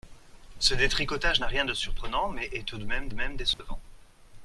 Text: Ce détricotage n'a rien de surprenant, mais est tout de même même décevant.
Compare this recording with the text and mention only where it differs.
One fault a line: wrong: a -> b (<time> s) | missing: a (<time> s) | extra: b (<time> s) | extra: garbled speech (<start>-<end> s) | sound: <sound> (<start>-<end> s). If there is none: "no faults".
sound: dropout (3.5-3.6 s)